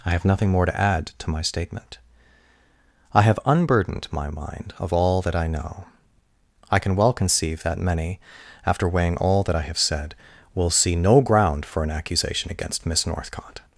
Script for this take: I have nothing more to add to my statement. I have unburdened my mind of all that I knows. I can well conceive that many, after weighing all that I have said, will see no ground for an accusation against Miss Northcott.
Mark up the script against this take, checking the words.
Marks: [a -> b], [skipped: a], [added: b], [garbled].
I have nothing more to add to my statement. I have unburdened my mind of all that I [knows. -> know] I can well conceive that many, after weighing all that I have said, will see no ground for an accusation against Miss Northcott.